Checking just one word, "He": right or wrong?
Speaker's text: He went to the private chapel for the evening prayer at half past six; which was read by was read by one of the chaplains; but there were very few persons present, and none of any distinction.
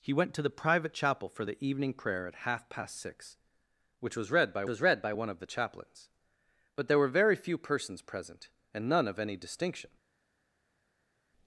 right